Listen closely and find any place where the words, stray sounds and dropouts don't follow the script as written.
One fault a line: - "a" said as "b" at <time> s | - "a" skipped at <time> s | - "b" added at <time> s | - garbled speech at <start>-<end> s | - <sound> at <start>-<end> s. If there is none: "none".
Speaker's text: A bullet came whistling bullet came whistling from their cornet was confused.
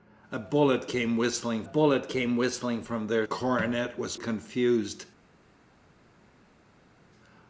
none